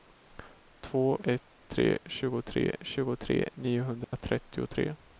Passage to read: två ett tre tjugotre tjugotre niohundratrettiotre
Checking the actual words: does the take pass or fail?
pass